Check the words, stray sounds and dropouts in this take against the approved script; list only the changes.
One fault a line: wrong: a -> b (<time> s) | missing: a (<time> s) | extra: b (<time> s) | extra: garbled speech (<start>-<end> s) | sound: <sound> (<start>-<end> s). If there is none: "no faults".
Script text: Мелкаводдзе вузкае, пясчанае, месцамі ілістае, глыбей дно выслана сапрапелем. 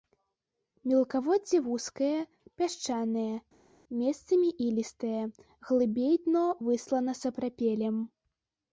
no faults